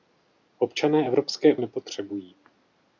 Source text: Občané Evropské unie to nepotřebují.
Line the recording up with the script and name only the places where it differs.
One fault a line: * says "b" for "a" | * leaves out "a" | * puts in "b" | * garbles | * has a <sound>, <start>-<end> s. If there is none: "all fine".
* leaves out "unie to"